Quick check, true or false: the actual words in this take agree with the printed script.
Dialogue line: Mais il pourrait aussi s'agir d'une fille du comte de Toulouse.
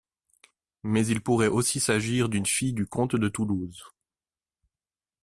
true